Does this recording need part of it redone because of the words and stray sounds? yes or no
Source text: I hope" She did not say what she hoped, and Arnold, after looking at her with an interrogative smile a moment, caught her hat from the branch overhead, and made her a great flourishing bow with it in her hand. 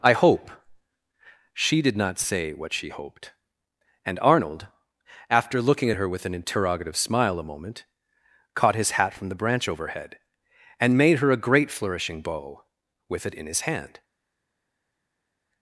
yes